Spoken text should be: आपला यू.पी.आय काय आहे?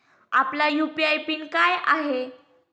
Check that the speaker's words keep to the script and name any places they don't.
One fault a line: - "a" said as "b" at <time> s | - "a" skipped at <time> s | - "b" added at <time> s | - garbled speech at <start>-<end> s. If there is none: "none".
- "पिन" added at 1.3 s